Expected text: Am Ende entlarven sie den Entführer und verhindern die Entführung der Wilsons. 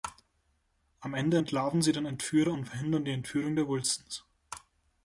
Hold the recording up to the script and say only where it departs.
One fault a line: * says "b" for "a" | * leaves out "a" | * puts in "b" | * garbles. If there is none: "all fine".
all fine